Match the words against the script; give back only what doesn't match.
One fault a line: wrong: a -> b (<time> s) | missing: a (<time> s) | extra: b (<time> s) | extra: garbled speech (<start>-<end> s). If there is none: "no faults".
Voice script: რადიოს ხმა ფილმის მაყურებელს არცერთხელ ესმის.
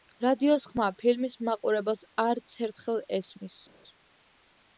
no faults